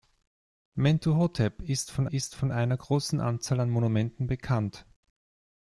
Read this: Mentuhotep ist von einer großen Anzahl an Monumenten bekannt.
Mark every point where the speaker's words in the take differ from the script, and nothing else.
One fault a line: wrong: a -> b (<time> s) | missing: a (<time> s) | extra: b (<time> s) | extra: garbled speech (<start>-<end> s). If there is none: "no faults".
extra: ist von (2.1 s)